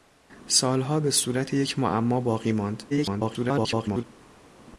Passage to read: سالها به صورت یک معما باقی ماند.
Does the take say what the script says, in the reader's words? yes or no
no